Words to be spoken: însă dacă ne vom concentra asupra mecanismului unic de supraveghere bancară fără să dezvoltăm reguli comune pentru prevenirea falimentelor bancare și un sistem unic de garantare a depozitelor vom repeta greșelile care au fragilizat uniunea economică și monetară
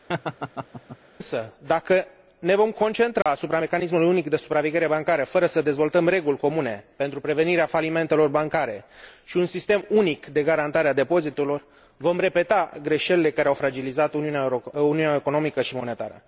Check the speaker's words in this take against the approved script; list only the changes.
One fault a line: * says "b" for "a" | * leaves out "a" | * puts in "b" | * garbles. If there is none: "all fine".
all fine